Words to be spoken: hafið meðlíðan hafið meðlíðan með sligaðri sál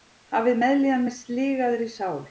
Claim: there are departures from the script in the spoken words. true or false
true